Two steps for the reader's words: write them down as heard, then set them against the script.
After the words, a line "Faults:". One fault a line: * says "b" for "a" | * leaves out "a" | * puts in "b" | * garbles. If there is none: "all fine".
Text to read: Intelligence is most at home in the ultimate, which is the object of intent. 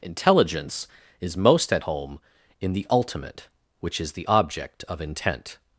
Intelligence is most at home in the ultimate, which is the object of intent.
Faults:
all fine